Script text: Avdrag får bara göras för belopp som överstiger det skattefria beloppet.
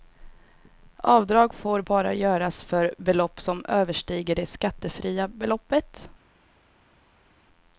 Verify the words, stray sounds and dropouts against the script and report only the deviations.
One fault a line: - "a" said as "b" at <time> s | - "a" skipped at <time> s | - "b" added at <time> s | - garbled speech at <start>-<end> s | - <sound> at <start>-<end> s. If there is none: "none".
none